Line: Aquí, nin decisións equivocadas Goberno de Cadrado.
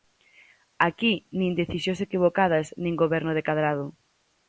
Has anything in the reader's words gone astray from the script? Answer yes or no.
yes